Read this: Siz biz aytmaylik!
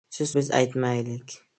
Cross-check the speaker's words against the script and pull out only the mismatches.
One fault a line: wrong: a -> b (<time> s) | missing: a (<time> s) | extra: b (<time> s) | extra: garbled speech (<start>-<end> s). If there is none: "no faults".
no faults